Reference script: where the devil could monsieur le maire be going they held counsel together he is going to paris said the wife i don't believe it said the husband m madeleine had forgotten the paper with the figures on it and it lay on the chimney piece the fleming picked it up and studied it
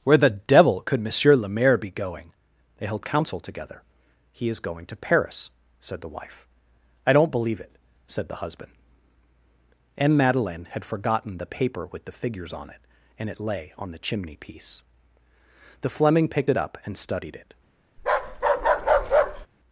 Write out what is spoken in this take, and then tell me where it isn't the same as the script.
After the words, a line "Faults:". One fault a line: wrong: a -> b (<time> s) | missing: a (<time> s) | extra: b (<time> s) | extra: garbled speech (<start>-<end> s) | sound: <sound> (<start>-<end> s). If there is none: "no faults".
where the devil could monsieur le maire be going they held counsel together he is going to paris said the wife i don't believe it said the husband m madeleine had forgotten the paper with the figures on it and it lay on the chimney piece the fleming picked it up and studied it
Faults:
sound: bark (18.0-19.5 s)